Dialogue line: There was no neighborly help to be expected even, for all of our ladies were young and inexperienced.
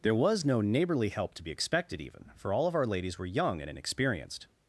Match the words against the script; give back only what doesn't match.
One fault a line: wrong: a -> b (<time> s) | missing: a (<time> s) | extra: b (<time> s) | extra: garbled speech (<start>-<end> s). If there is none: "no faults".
no faults